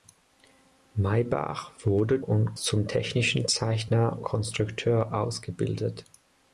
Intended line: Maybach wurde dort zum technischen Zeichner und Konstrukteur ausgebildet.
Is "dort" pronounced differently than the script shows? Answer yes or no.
yes